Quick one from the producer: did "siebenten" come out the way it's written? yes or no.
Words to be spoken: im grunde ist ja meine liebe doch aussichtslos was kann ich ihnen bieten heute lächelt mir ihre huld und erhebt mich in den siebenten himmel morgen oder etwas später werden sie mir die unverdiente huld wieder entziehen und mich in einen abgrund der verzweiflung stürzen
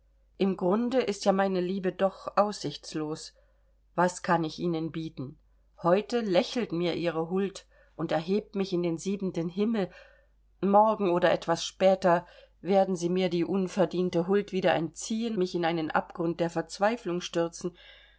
yes